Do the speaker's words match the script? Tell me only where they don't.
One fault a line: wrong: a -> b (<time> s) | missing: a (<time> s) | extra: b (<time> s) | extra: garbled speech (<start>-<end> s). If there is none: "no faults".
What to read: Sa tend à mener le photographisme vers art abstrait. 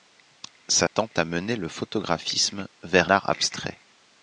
no faults